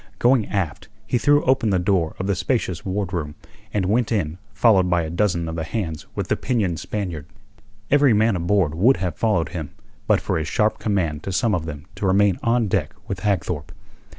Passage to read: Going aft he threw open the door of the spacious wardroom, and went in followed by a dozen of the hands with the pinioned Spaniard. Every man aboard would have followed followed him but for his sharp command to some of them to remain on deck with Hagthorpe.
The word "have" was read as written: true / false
true